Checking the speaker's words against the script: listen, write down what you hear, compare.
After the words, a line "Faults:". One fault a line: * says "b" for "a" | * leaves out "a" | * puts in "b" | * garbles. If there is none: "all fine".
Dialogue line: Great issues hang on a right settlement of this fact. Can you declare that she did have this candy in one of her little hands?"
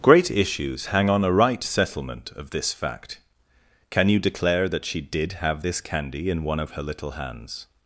Great issues hang on a right settlement of this fact. Can you declare that she did have this candy in one of her little hands?"
Faults:
all fine